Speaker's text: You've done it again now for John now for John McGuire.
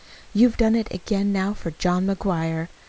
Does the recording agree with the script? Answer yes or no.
no